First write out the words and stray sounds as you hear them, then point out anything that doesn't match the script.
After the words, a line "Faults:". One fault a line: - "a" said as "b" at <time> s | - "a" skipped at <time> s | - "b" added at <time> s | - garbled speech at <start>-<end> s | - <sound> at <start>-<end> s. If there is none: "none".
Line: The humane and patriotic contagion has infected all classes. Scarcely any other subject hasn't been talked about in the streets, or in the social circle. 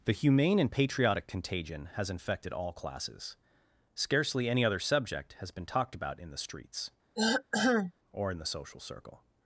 The humane and patriotic contagion has infected all classes. Scarcely any other subject has been talked about in the streets, or in the social circle.
Faults:
- "hasn't" said as "has" at 5.3 s
- throat clearing at 7.1-7.9 s